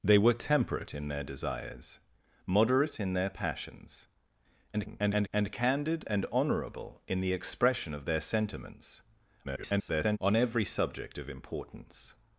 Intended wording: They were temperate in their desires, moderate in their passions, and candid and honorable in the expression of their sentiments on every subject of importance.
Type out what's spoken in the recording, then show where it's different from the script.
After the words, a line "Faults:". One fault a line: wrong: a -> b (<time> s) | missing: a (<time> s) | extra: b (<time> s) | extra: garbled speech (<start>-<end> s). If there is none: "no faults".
They were temperate in their desires, moderate in their passions, [garbled] and candid and honorable in the expression of their sentiments [garbled] on every subject of importance.
Faults:
extra: garbled speech (4.7-5.3 s)
extra: garbled speech (9.4-10.2 s)